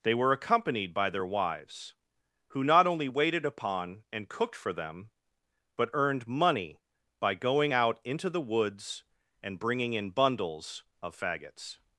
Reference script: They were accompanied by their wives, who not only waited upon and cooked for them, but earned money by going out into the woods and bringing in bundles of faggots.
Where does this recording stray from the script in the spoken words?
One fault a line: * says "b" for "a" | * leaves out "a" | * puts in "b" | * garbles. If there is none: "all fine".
all fine